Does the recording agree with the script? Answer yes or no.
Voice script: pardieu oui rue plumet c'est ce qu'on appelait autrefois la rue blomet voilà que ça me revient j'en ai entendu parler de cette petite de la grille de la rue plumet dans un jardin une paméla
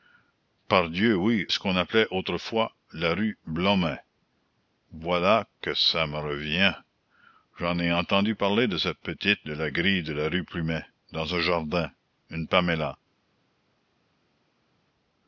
no